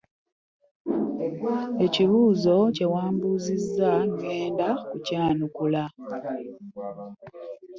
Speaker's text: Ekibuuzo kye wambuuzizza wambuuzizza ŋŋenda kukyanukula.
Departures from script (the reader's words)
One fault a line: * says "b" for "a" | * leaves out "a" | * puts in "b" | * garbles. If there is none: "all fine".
* leaves out "wambuuzizza"